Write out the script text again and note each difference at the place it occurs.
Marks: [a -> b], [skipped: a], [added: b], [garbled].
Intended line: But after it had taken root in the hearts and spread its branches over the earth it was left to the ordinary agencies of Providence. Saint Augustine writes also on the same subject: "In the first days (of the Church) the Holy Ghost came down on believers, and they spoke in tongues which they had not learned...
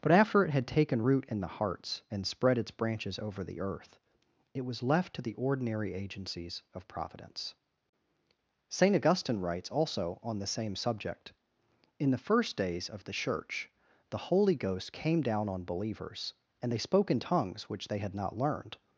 But after it had taken root in the hearts and spread its branches over the earth it was left to the ordinary agencies of Providence. Saint Augustine writes also on the same subject: "In the first days (of the Church) the Holy Ghost came down on believers, and they spoke in tongues which they had not learned...